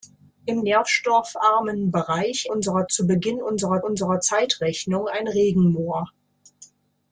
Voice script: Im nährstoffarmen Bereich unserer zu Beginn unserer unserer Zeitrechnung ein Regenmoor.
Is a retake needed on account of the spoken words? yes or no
no